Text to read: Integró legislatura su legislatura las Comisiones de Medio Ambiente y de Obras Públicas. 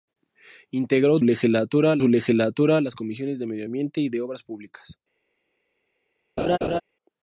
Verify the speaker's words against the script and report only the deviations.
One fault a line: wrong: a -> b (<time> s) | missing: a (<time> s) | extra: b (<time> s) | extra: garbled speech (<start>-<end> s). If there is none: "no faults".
no faults